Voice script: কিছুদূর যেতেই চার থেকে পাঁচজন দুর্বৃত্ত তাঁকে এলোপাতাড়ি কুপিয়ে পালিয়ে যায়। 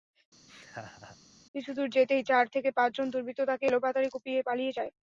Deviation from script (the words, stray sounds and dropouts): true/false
true